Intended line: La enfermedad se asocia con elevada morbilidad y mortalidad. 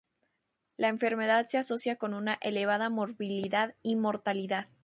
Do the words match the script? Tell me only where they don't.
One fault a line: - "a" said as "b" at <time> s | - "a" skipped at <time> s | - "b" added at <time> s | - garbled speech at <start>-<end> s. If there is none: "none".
- "una" added at 2.1 s